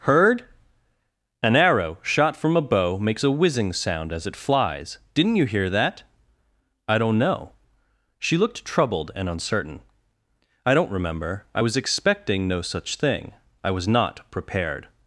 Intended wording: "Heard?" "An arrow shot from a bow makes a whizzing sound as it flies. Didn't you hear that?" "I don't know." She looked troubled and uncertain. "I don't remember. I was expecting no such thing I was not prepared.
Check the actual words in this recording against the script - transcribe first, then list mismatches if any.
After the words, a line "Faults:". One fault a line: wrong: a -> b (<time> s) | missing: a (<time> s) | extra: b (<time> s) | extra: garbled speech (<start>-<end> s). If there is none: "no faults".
"Heard?" "An arrow shot from a bow makes a whizzing sound as it flies. Didn't you hear that?" "I don't know." She looked troubled and uncertain. "I don't remember. I was expecting no such thing I was not prepared.
Faults:
no faults